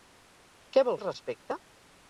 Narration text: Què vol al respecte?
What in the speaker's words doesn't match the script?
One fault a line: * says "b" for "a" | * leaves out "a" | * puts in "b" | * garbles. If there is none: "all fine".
all fine